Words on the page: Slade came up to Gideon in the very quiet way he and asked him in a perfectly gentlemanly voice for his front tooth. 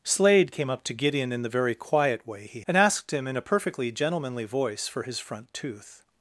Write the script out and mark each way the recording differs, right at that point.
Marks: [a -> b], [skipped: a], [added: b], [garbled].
Slade came up to Gideon in the very quiet way he and asked him in a perfectly gentlemanly voice for his front tooth.